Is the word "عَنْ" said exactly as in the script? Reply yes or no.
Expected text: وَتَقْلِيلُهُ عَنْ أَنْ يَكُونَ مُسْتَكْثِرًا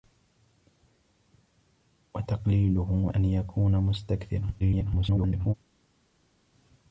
no